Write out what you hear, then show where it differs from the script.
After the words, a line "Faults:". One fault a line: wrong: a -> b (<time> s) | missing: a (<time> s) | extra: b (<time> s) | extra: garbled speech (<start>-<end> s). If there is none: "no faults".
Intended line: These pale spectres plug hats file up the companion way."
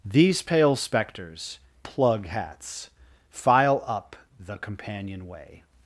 These pale spectres plug hats file up the companion way."
Faults:
no faults